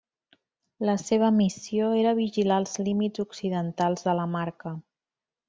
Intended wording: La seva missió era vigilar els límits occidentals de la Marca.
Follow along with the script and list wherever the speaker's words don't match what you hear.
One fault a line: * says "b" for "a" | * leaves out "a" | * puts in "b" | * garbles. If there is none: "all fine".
all fine